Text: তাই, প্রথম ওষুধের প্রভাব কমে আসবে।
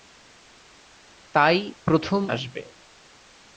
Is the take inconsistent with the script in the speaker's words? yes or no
yes